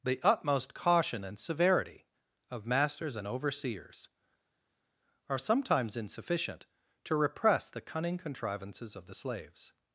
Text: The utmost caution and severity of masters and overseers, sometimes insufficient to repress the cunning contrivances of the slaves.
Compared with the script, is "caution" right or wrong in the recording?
right